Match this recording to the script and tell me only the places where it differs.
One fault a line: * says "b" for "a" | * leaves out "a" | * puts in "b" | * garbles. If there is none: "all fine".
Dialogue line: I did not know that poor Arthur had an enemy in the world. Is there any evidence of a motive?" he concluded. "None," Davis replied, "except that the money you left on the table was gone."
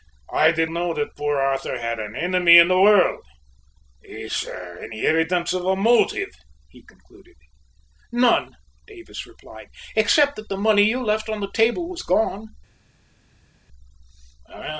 * leaves out "not"